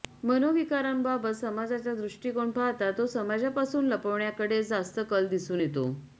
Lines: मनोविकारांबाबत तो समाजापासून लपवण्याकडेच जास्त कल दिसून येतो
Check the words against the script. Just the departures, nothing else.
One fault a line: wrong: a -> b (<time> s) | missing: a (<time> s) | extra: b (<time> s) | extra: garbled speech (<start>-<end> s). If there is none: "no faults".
extra: समाजाचा दृष्टिकोन पाहता (1.4 s)